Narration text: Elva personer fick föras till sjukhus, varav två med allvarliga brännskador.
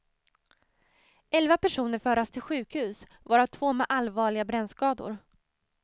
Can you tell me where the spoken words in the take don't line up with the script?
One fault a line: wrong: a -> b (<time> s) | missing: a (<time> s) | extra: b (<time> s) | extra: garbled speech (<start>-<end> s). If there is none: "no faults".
missing: fick (2.0 s)